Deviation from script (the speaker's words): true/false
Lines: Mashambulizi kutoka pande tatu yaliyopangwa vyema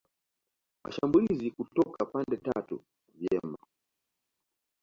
true